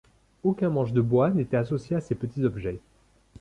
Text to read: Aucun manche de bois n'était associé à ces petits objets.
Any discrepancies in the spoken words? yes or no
no